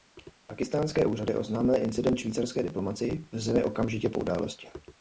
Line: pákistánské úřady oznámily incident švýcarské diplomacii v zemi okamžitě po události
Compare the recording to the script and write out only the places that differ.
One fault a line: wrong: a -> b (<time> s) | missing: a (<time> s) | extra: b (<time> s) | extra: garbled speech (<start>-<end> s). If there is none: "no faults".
no faults